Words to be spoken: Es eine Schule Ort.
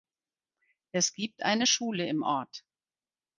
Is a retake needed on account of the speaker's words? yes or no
yes